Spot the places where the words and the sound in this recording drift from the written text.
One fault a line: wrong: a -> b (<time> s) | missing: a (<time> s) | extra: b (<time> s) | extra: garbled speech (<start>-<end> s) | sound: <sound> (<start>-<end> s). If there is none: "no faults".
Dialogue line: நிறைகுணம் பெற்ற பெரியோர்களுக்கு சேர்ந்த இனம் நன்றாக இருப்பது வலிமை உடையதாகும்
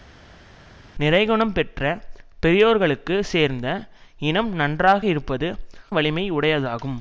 no faults